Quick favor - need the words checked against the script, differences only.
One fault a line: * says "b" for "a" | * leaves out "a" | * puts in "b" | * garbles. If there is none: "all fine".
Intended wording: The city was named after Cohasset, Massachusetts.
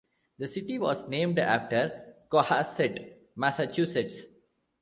all fine